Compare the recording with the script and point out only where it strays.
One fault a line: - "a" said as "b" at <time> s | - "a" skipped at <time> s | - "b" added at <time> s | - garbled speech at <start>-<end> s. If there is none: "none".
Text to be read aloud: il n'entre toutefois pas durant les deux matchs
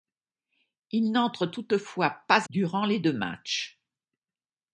none